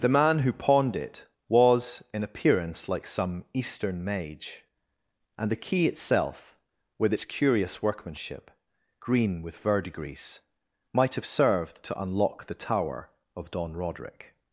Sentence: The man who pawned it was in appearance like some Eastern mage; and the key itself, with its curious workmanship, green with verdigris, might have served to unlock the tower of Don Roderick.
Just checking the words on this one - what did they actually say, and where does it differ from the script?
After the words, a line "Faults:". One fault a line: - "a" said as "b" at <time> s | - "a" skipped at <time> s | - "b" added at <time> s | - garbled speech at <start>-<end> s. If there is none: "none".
The man who pawned it was in appearance like some Eastern mage; and the key itself, with its curious workmanship, green with verdigris, might have served to unlock the tower of Don Roderick.
Faults:
none